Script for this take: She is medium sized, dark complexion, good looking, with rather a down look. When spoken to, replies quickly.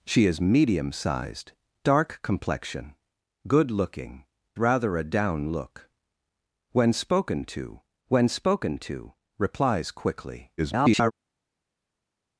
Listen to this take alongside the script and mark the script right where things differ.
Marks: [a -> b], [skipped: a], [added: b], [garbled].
She is medium sized, dark complexion, good looking, [skipped: with] rather a down look. When spoken to, [added: when spoken to] replies quickly. [garbled]